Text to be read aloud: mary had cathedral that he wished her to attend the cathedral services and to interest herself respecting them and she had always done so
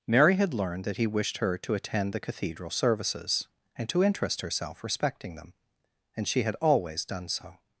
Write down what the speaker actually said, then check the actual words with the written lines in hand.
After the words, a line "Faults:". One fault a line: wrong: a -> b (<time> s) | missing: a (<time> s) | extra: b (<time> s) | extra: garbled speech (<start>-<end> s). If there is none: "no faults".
mary had learned that he wished her to attend the cathedral services and to interest herself respecting them and she had always done so
Faults:
wrong: cathedral -> learned (0.5 s)